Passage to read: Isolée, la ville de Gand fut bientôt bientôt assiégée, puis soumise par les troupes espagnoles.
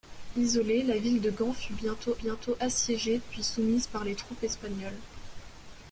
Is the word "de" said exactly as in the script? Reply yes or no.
yes